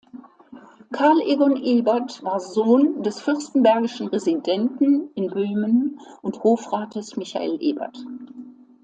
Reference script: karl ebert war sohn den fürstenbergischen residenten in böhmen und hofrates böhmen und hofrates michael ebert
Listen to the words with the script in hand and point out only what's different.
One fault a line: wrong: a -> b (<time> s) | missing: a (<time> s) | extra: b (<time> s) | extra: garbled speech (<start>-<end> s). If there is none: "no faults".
extra: egon (1.2 s)
wrong: den -> des (3.0 s)
missing: böhmen und hofrates (7.2 s)